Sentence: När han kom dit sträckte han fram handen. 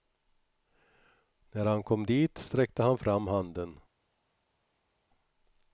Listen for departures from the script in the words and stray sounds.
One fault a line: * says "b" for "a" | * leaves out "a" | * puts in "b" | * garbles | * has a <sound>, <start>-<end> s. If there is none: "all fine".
all fine